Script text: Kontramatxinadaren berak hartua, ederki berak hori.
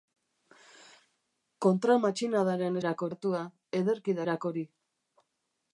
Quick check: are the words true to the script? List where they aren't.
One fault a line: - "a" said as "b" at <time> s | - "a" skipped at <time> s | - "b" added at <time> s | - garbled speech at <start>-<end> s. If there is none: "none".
none